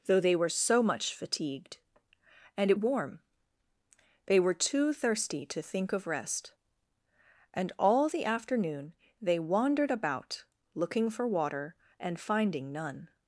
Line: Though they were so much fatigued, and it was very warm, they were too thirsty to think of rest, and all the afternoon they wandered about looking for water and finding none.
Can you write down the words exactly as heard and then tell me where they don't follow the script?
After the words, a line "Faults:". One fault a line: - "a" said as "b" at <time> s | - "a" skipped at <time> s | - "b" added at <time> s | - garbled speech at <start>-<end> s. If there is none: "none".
Though they were so much fatigued, and it warm, they were too thirsty to think of rest, and all the afternoon they wandered about looking for water and finding none.
Faults:
- "was very" skipped at 2.8 s